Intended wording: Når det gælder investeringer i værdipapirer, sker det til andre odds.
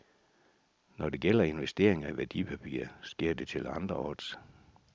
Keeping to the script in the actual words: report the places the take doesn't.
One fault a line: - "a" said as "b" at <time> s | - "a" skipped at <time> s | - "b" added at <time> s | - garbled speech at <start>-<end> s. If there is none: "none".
none